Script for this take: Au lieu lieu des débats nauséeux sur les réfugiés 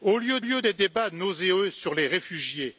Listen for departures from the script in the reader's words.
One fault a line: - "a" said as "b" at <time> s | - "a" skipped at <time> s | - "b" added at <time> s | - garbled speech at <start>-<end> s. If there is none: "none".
none